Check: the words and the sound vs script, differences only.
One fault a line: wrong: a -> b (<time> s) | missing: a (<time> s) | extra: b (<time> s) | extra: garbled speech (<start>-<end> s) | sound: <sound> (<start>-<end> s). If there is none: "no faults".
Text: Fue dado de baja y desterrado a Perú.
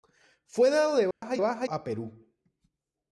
sound: dropout (1.1-1.2 s)
wrong: desterrado -> baja (1.4 s)